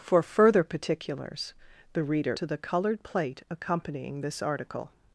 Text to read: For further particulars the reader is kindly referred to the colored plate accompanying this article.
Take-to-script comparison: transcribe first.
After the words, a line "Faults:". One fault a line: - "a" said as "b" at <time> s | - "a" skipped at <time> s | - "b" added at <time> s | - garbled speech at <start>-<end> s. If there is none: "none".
For further particulars the reader to the colored plate accompanying this article.
Faults:
- "is kindly referred" skipped at 2.3 s